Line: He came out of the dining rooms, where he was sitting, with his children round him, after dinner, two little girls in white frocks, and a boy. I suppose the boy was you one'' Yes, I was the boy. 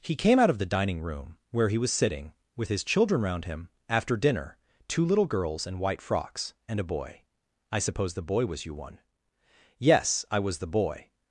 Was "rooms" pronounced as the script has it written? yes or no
no